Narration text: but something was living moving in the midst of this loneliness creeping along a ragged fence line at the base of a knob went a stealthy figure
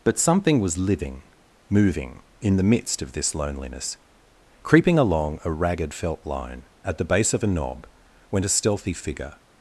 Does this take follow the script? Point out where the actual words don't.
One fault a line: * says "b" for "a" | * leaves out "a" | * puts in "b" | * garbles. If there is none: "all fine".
* says "felt" for "fence"